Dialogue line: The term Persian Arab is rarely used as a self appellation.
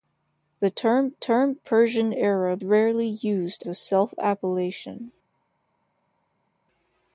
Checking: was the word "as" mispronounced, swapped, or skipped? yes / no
yes